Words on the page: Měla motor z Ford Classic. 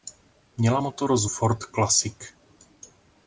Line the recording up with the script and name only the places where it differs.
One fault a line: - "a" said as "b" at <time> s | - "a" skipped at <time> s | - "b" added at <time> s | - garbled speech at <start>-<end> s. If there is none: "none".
none